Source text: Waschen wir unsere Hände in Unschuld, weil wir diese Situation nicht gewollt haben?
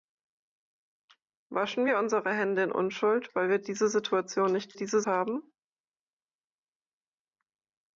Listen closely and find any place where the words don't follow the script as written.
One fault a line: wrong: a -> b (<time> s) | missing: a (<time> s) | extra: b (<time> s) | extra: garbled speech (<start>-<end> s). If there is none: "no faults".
wrong: gewollt -> diese (4.7 s)